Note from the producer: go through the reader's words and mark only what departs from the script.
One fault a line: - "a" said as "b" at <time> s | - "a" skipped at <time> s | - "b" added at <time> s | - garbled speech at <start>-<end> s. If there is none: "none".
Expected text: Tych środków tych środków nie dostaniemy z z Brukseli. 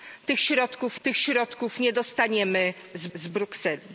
none